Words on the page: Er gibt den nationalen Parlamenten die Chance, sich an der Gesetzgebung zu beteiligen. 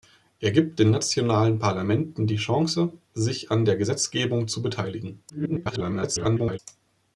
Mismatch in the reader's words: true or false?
true